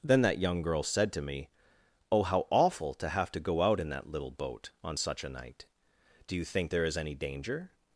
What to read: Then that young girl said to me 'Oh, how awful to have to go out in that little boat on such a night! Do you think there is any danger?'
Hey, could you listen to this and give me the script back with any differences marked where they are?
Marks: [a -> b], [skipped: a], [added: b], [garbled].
Then that young girl said to me 'Oh, how awful to have to go out in that little boat on such a night! Do you think there is any danger?'